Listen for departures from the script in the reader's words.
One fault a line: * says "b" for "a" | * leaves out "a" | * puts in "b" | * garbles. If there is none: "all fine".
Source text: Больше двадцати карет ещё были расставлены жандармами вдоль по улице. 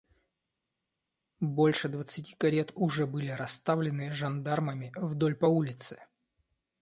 * says "уже" for "ещё"